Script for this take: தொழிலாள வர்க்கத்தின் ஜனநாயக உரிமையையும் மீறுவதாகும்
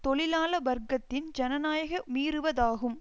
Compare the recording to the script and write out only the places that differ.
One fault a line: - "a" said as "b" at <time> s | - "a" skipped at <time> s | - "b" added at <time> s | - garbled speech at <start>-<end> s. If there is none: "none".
- "உரிமையையும்" skipped at 2.0 s